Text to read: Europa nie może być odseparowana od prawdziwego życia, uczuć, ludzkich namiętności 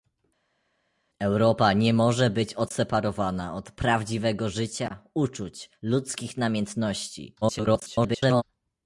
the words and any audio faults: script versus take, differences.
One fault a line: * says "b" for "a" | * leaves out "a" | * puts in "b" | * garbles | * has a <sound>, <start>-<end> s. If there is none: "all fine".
* garbles